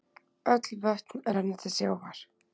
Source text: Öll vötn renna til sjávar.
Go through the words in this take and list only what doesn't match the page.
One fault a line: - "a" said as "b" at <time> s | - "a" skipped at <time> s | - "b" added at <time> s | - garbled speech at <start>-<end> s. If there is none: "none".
none